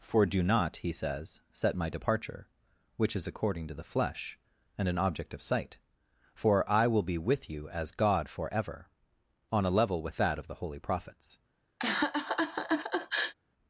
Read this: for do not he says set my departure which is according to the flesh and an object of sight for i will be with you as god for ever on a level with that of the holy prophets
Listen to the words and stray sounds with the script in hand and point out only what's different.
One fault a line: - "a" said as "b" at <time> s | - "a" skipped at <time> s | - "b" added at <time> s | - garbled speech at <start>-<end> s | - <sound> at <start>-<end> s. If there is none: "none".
- laugh at 11.8-13.3 s